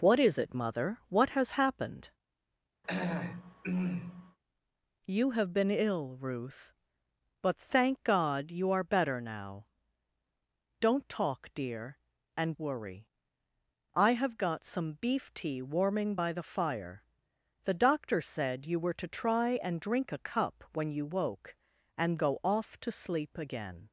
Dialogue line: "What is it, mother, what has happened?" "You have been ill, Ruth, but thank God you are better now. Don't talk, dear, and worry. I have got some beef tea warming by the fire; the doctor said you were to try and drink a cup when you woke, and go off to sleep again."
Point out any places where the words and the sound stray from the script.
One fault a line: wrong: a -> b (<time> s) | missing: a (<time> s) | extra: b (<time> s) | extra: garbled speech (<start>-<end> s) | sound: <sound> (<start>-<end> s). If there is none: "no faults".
sound: throat clearing (2.8-4.4 s)